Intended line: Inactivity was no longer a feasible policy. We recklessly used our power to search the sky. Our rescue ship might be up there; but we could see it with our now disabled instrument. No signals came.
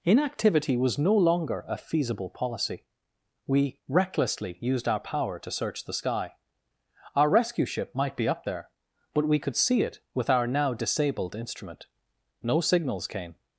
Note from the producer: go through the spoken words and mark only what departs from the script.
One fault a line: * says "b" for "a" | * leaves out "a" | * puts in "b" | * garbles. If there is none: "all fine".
all fine